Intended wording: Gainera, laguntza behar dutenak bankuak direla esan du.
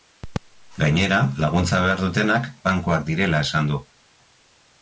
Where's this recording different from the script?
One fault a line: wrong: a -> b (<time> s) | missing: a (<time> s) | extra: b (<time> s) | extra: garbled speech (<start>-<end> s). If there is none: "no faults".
no faults